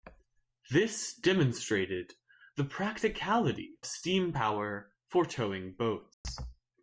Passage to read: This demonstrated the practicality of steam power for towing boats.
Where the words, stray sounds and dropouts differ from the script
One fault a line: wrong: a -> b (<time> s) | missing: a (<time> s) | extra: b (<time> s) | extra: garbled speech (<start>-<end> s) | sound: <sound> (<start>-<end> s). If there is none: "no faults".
missing: of (3.8 s)
sound: dropout (6.1-6.2 s)